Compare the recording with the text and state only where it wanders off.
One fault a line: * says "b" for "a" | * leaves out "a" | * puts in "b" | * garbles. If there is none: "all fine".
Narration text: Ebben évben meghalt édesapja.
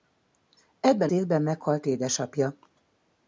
all fine